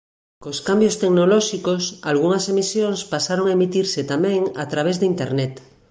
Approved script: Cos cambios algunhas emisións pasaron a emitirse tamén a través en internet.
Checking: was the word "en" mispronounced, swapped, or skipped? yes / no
yes